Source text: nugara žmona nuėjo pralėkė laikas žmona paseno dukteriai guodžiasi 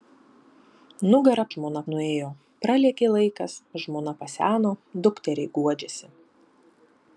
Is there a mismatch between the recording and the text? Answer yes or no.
no